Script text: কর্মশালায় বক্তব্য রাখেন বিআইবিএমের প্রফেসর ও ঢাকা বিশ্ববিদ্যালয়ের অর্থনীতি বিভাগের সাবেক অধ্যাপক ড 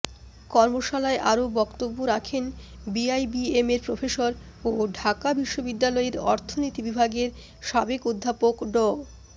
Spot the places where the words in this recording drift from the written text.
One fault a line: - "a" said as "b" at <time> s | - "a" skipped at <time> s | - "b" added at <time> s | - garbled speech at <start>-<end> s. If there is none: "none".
- "আরও" added at 1.3 s